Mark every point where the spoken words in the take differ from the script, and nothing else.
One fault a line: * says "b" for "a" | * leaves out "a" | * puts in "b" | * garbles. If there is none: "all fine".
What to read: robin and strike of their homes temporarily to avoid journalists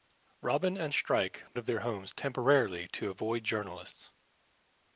all fine